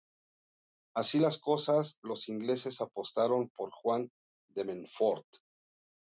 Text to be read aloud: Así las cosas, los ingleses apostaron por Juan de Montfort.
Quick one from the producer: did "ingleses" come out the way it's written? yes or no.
yes